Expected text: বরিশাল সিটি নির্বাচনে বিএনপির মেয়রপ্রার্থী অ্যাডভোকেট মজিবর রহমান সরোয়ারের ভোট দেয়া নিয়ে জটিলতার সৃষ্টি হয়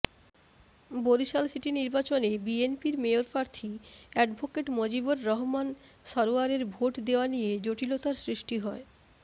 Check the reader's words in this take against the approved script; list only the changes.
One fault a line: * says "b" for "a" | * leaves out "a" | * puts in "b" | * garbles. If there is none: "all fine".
all fine